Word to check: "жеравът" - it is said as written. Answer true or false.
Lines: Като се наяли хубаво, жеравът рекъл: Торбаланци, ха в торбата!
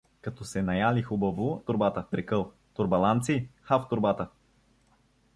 false